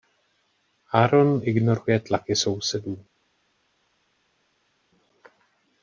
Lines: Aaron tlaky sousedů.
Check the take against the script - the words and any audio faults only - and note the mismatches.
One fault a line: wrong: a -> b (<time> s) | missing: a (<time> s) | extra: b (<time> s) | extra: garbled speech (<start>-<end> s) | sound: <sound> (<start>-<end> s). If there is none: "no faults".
extra: ignoruje (1.4 s)